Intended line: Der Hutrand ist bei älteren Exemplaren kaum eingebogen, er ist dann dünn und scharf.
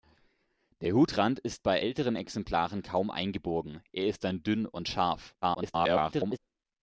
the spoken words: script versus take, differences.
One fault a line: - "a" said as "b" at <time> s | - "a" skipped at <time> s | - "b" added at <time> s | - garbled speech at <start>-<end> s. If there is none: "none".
- garbled speech at 5.4-6.4 s